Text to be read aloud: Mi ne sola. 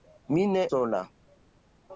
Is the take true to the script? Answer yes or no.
yes